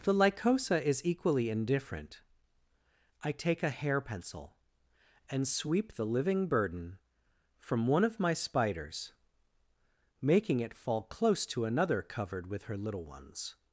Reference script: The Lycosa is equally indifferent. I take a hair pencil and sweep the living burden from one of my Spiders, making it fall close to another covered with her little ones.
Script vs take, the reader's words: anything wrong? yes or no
no